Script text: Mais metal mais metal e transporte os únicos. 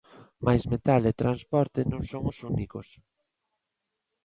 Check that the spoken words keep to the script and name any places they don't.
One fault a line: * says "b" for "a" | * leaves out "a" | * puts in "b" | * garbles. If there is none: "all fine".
* says "e transporte non son" for "mais metal e transporte"